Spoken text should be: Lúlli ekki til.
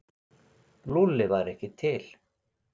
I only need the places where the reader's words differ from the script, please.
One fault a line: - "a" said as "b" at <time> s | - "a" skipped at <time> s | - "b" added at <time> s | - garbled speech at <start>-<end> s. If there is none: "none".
- "væri" added at 1.3 s